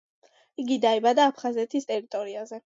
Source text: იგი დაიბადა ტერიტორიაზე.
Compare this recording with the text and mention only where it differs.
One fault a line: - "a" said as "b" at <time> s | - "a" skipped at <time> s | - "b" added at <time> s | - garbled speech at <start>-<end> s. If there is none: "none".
- "აფხაზეთის" added at 1.3 s